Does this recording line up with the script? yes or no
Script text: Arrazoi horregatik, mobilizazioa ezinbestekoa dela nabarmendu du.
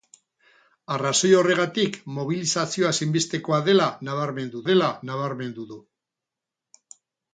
no